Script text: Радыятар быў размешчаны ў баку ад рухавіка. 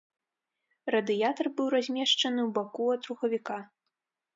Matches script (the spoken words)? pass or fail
pass